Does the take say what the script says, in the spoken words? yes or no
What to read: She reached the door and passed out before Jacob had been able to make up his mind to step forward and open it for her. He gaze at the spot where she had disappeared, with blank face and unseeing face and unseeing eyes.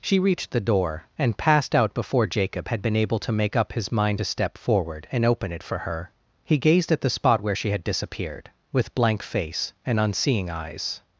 no